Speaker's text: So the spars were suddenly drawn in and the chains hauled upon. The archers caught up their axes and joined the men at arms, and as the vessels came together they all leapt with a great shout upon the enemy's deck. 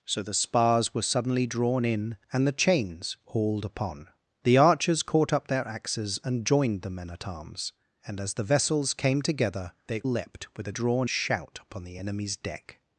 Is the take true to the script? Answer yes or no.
no